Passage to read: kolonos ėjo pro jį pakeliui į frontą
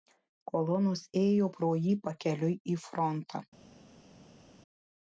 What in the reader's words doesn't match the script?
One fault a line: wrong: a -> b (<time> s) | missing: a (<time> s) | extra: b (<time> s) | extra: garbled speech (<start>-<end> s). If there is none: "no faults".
no faults